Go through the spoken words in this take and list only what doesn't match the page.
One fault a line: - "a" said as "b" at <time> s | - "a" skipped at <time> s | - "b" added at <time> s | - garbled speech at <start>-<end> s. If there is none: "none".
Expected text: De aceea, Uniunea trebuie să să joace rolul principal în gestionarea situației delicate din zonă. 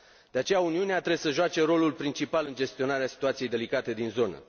- "să" skipped at 1.3 s